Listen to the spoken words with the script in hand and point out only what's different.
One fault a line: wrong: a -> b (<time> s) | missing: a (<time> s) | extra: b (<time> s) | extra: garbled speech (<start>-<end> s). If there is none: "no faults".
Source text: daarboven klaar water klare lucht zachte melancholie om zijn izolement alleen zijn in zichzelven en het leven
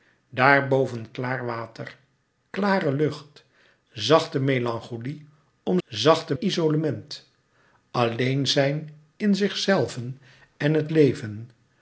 wrong: zijn -> zachte (5.9 s)